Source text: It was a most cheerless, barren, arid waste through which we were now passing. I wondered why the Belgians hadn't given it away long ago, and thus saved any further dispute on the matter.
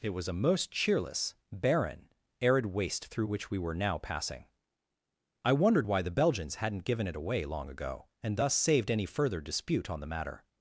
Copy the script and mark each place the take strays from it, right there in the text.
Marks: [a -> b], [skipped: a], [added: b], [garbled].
It was a most cheerless, barren, arid waste through which we were now passing. I wondered why the Belgians hadn't given it away long ago, and thus saved any further dispute on the matter.